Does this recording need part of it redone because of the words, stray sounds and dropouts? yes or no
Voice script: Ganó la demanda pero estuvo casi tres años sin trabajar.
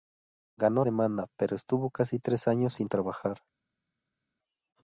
yes